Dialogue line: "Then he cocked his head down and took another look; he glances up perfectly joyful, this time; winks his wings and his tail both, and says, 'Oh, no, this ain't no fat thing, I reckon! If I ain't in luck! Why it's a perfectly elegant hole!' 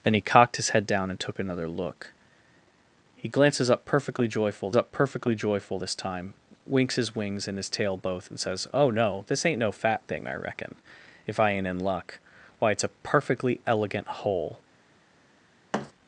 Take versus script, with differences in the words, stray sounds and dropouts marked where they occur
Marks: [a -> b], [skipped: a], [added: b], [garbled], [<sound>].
"Then he cocked his head down and took another look; he glances up perfectly joyful, [added: up perfectly joyful] this time; winks his wings and his tail both, and says, 'Oh, no, this ain't no fat thing, I reckon! If I ain't in luck! Why it's a perfectly elegant hole!' [thud]